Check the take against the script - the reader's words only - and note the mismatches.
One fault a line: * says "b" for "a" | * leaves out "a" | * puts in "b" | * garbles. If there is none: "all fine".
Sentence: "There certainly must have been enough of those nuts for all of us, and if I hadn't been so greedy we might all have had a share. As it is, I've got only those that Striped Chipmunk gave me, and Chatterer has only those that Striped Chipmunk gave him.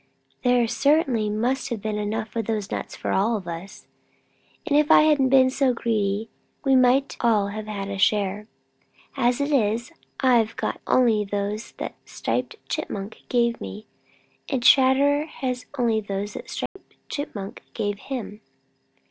all fine